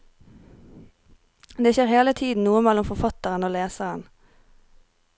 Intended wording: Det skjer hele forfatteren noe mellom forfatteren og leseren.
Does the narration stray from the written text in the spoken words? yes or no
yes